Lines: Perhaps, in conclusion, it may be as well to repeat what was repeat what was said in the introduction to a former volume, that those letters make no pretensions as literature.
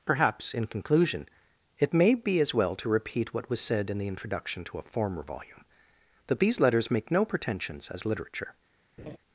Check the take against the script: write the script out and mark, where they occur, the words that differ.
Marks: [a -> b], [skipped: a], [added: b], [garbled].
Perhaps, in conclusion, it may be as well to repeat what was [skipped: repeat what was] said in the introduction to a former volume, that [those -> these] letters make no pretensions as literature.